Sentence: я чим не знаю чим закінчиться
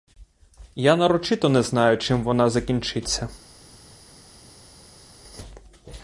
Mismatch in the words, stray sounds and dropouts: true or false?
true